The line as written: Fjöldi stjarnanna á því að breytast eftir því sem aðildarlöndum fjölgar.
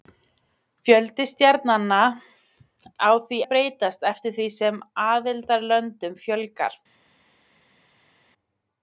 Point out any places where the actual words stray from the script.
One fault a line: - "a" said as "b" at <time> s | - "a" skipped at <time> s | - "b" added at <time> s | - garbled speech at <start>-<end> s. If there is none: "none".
none